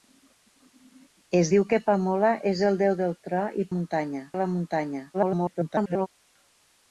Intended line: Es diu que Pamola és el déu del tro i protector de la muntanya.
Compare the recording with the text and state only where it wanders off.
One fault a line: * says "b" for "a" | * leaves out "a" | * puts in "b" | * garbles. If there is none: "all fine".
* says "muntanya" for "protector"
* garbles